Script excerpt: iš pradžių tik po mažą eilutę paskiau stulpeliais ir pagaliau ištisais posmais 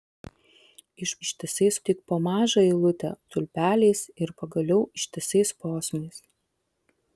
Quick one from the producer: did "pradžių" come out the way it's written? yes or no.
no